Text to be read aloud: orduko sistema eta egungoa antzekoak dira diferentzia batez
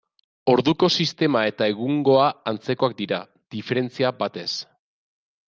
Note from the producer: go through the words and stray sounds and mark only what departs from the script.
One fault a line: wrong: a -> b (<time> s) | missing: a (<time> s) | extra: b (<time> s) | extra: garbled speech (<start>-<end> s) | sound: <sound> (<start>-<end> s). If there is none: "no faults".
no faults